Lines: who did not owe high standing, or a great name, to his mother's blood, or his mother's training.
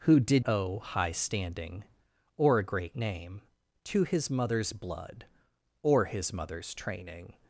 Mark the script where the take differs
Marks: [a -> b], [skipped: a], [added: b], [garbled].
who did [skipped: not] owe high standing, or a great name, to his mother's blood, or his mother's training.